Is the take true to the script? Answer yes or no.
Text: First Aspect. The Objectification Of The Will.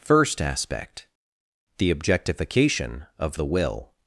yes